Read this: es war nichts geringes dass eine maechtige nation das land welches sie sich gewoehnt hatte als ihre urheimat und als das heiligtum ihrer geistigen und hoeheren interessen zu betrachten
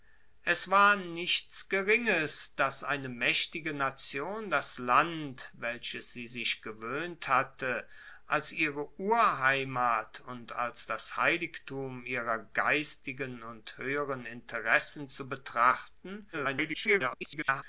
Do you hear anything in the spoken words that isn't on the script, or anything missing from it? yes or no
yes